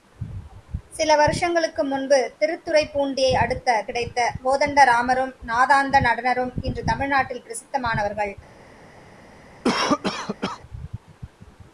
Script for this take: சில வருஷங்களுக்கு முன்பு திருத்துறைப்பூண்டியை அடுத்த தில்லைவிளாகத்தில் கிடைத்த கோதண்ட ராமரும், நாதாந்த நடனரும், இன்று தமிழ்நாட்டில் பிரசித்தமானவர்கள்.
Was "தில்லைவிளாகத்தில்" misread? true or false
true